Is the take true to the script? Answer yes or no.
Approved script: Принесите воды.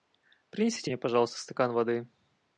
no